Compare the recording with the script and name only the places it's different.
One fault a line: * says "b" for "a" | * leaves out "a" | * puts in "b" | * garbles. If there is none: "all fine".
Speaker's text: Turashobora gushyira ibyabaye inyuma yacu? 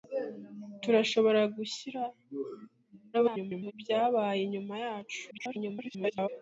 * garbles
* garbles